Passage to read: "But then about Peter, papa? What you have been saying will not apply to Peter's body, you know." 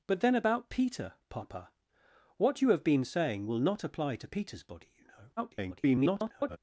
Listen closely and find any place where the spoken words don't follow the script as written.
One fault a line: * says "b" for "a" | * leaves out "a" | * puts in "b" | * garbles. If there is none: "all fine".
* garbles